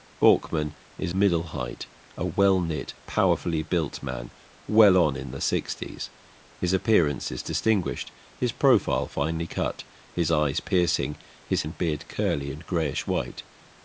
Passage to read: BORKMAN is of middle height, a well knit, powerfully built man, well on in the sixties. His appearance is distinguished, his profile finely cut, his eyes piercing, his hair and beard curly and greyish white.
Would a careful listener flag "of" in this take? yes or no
yes